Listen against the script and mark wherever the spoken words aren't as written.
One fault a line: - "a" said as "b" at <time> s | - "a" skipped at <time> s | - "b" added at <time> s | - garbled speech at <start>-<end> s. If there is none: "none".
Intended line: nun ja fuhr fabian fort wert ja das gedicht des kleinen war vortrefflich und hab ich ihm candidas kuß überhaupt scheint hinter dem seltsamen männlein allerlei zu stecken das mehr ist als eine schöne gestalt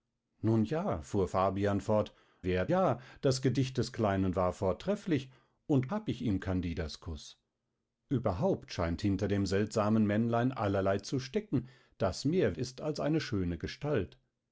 none